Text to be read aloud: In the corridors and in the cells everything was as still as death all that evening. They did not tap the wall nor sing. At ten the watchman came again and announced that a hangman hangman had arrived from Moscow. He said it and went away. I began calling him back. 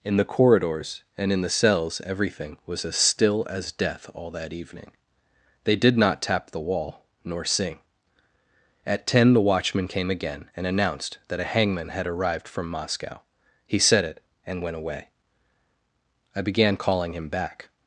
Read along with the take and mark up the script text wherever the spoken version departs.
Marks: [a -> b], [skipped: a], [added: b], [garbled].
In the corridors and in the cells everything was as still as death all that evening. They did not tap the wall nor sing. At ten the watchman came again and announced that a hangman [skipped: hangman] had arrived from Moscow. He said it and went away. I began calling him back.